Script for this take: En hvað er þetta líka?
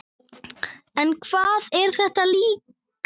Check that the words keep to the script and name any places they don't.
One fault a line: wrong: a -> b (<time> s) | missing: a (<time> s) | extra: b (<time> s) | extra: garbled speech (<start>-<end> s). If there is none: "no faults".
no faults